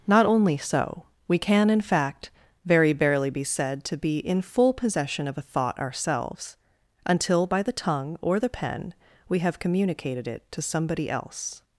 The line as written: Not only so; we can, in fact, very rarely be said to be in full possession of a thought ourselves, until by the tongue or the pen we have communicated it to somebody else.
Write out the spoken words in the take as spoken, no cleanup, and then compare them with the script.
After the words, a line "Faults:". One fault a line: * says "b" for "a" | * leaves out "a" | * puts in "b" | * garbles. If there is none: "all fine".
Not only so; we can, in fact, very barely be said to be in full possession of a thought ourselves, until by the tongue or the pen we have communicated it to somebody else.
Faults:
* says "barely" for "rarely"